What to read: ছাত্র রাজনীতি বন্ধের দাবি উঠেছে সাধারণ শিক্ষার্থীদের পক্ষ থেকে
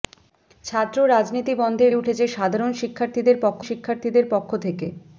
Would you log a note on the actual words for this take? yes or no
yes